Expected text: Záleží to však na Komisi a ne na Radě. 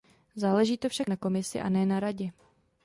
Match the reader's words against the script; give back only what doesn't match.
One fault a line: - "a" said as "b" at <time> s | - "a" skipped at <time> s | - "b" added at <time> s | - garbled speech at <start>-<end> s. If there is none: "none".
none